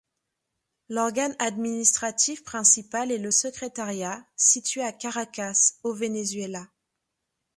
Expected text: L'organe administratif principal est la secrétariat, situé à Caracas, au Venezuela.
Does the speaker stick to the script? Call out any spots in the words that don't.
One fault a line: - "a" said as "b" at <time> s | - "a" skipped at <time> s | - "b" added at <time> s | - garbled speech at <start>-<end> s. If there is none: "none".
- "la" said as "le" at 3.2 s